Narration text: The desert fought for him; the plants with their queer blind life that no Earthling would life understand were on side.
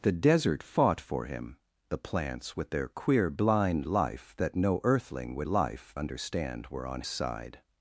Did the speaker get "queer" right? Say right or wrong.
right